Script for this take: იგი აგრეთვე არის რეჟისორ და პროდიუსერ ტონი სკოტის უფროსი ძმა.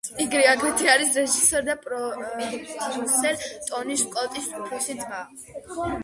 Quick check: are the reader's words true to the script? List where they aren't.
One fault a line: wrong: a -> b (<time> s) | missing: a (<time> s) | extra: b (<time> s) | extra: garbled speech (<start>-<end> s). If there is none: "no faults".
no faults